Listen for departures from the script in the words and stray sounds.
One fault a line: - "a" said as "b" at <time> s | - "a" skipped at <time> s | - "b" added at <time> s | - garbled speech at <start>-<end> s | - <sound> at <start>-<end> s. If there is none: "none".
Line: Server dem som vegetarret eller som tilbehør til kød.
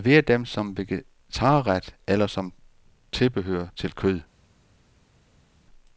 none